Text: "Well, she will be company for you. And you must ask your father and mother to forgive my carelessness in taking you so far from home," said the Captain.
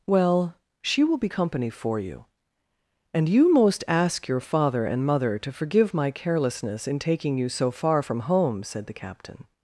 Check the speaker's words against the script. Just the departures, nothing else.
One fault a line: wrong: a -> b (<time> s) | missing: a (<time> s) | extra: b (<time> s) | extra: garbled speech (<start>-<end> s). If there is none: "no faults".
wrong: must -> most (3.5 s)